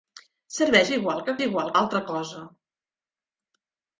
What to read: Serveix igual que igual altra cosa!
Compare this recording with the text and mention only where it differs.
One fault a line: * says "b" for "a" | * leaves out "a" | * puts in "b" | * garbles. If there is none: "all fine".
all fine